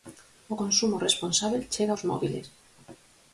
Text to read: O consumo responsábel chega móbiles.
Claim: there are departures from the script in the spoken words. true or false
true